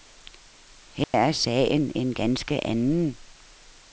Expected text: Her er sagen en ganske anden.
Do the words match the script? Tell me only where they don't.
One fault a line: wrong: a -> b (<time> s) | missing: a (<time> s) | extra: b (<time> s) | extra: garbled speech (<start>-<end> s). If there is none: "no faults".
no faults